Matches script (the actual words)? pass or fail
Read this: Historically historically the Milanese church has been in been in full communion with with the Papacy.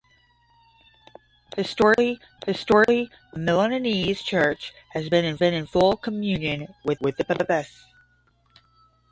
pass